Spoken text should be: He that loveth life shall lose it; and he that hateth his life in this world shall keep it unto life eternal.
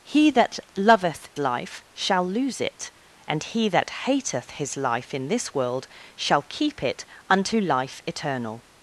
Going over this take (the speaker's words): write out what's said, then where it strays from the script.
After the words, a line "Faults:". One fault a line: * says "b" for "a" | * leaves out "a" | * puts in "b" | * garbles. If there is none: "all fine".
He that loveth life shall lose it; and he that hateth his life in this world shall keep it unto life eternal.
Faults:
all fine